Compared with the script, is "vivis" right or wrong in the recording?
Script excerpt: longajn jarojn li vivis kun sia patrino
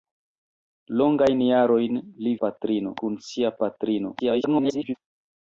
wrong